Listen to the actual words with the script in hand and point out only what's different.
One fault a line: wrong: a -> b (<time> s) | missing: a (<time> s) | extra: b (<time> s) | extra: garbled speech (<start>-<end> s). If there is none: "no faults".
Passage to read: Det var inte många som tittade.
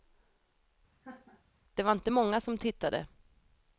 no faults